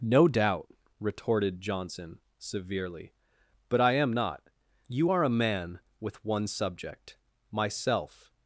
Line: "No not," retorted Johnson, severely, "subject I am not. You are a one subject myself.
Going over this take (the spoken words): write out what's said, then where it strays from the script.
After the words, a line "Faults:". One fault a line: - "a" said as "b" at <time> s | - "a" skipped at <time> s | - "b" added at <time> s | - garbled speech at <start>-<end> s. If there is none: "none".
"No doubt," retorted Johnson, severely, "but I am not. You are a man with one subject myself.
Faults:
- "not" said as "doubt" at 0.3 s
- "subject" said as "but" at 3.7 s
- "man with" added at 5.4 s